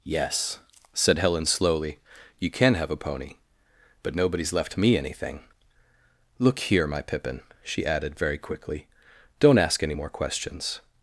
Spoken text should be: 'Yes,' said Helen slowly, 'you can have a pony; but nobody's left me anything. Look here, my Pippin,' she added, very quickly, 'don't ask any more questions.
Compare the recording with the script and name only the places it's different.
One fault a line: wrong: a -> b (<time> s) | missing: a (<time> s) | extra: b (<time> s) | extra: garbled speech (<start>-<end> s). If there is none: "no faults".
no faults